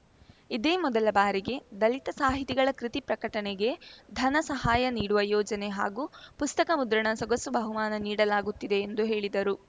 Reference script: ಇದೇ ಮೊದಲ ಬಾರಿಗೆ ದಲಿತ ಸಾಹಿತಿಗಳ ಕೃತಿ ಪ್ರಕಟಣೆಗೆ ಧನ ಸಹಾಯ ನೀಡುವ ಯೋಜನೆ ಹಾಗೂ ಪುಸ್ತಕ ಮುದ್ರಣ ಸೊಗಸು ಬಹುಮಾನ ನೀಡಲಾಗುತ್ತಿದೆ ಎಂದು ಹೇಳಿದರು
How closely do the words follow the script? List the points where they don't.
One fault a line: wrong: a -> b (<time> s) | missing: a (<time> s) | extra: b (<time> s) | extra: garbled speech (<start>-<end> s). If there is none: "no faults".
no faults